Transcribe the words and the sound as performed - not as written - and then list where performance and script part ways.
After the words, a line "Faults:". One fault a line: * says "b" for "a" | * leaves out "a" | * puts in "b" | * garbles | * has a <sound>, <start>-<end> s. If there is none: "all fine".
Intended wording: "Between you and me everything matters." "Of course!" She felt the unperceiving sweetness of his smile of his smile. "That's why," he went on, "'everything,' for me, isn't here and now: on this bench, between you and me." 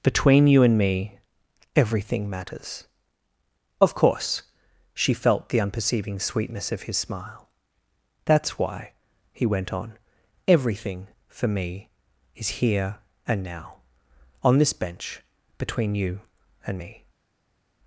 "Between you and me everything matters." "Of course!" She felt the unperceiving sweetness of his smile. "That's why," he went on, "'everything,' for me, is here and now: on this bench, between you and me."
Faults:
* leaves out "of his smile"
* says "is" for "isn't"